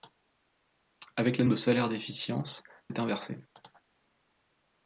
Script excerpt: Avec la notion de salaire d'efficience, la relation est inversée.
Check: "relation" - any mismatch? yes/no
yes